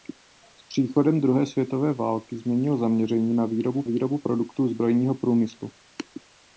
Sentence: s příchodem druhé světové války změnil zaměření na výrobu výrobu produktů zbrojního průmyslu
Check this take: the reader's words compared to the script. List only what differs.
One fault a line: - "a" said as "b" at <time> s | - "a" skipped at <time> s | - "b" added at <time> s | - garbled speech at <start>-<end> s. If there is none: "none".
none